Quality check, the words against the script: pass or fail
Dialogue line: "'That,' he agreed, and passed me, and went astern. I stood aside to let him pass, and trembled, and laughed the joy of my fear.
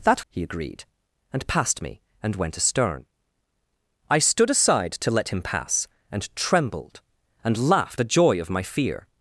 pass